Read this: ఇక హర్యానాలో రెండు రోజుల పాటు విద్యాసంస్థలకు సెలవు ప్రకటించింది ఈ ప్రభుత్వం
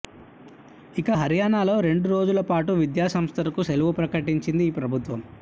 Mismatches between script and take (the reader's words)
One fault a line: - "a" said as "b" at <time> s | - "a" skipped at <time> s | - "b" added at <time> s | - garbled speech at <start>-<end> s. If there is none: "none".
none